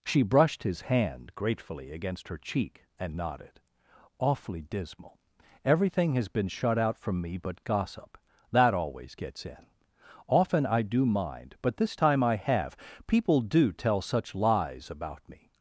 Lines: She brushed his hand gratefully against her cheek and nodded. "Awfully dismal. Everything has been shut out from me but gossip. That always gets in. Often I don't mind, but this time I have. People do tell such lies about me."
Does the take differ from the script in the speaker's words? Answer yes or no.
yes